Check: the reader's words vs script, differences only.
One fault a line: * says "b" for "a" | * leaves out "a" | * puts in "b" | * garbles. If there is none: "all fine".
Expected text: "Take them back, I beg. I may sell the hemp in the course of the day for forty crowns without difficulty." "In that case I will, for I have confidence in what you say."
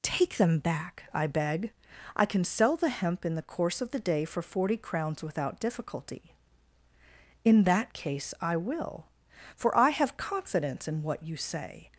* says "can" for "may"